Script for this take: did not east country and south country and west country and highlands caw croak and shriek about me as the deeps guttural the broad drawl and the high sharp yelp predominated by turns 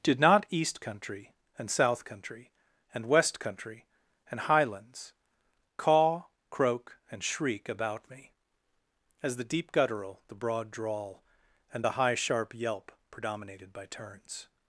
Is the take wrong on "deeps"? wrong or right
wrong